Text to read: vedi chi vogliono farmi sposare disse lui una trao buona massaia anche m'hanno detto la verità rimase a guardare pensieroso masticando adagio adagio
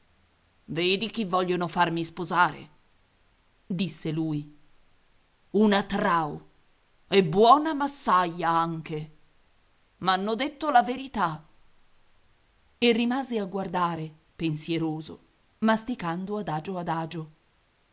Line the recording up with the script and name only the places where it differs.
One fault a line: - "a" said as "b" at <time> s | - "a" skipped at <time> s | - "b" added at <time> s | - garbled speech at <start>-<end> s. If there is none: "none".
- "e" added at 7.1 s
- "e" added at 12.8 s